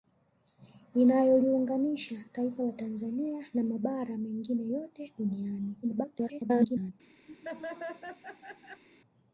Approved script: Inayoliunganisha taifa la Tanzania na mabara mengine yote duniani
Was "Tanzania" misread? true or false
false